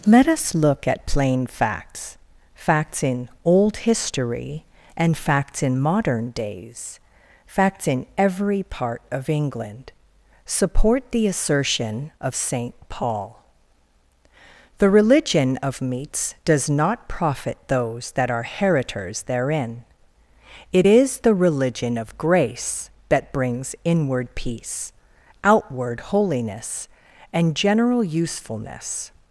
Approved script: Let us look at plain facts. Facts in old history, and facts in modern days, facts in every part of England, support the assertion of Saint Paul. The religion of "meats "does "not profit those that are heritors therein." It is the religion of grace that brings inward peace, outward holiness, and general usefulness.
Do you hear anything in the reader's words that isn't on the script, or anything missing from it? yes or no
no